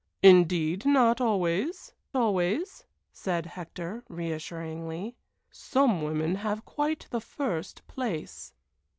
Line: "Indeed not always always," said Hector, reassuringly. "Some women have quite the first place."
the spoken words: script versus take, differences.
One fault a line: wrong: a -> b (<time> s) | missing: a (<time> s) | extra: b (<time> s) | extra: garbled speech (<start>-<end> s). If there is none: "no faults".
no faults